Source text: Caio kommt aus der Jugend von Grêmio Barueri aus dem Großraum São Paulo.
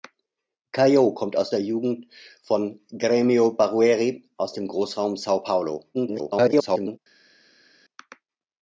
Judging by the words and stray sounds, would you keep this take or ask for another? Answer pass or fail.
fail